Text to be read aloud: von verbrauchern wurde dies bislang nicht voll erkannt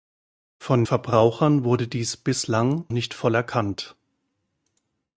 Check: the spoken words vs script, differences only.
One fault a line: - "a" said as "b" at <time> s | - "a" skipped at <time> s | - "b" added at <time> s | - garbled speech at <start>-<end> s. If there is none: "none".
none